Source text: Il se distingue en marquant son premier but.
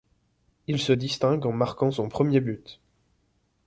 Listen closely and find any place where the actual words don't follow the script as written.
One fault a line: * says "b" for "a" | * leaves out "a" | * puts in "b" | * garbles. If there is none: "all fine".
all fine